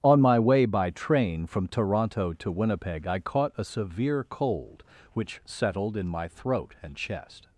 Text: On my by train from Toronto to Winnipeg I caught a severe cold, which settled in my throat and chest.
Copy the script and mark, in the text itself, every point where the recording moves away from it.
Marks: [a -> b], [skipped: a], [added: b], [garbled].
On my [added: way] by train from Toronto to Winnipeg I caught a severe cold, which settled in my throat and chest.